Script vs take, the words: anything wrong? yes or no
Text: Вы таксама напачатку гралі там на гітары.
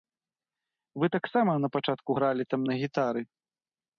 no